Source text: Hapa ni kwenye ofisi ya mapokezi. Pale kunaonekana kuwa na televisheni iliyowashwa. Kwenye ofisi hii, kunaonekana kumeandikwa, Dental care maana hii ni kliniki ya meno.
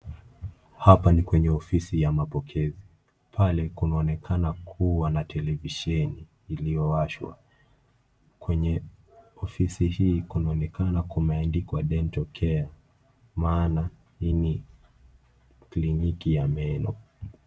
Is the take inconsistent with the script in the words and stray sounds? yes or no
no